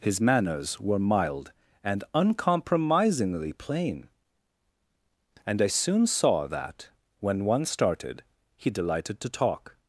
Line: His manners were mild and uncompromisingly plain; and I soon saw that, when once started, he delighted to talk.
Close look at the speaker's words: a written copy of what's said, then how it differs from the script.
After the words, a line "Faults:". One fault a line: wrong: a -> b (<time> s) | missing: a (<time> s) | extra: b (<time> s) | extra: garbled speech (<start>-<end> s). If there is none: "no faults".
His manners were mild and uncompromisingly plain; and I soon saw that, when one started, he delighted to talk.
Faults:
wrong: once -> one (7.5 s)